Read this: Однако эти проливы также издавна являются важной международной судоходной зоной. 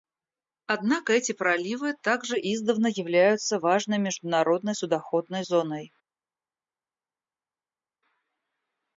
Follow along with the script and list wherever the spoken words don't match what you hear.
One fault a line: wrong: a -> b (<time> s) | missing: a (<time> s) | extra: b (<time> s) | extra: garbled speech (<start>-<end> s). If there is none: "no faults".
no faults